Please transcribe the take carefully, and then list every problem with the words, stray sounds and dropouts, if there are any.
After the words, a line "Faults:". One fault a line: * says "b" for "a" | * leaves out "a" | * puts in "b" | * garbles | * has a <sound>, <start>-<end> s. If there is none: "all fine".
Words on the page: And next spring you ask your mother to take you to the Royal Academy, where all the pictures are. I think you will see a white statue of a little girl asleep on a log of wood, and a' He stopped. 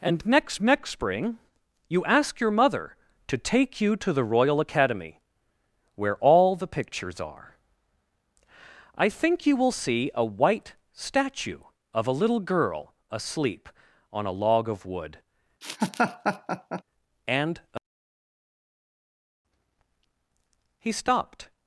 And next next spring you ask your mother to take you to the Royal Academy, where all the pictures are. I think you will see a white statue of a little girl asleep on a log of wood, and a' He stopped.
Faults:
* puts in "next"
* has a laugh, 15.6-16.8 s